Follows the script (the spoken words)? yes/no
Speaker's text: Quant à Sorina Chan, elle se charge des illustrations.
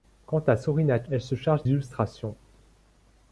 no